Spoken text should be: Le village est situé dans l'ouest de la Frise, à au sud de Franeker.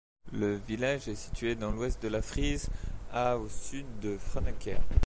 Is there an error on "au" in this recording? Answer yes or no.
no